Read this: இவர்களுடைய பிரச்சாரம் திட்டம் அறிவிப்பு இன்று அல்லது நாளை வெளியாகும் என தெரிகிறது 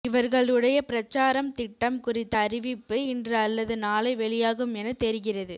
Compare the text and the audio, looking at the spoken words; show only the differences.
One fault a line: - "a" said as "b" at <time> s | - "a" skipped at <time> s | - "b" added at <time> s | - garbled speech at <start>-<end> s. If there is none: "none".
- "குறித்த" added at 2.0 s